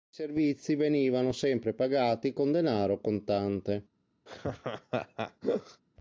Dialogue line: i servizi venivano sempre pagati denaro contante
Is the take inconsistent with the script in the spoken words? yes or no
yes